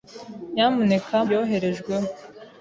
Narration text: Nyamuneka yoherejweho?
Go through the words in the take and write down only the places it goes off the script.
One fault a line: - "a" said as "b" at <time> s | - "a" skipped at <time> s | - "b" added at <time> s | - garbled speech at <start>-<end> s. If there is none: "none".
none